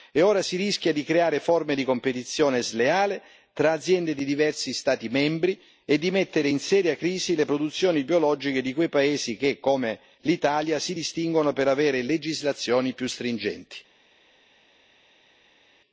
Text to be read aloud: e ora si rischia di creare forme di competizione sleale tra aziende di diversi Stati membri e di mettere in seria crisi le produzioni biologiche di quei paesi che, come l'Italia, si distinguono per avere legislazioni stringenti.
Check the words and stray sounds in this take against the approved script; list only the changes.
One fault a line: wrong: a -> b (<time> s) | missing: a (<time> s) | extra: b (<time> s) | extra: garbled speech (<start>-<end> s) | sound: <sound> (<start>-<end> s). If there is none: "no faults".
extra: più (12.9 s)